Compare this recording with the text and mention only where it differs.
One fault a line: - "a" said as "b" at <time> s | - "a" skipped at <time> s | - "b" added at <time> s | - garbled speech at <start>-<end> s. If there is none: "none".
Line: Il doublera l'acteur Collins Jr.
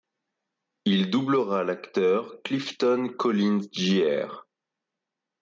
- "Clifton" added at 2.4 s